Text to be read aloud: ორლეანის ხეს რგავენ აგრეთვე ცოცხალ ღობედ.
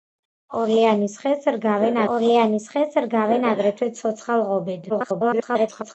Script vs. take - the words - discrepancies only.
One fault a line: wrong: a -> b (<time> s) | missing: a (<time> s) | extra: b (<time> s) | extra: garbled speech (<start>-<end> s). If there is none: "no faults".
extra: ორლეანის ხეს რგავენ (2.1 s)
extra: garbled speech (4.9-5.9 s)